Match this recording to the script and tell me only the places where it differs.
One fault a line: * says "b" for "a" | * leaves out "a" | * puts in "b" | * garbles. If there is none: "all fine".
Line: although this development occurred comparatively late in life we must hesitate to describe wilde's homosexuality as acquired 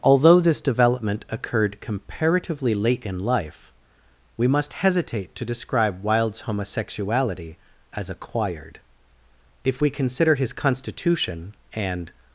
* puts in "if we consider his constitution and"